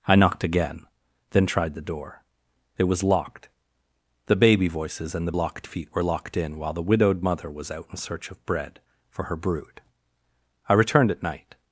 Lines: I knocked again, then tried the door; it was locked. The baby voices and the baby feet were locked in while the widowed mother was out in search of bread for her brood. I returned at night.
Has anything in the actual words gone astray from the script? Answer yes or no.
yes